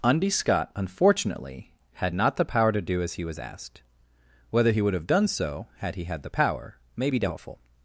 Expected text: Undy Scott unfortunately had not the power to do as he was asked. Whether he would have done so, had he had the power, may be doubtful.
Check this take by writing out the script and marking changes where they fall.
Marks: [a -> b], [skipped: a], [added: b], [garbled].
Undy Scott unfortunately had not the power to do as he was asked. Whether he would have done so, had he had the power, may be doubtful.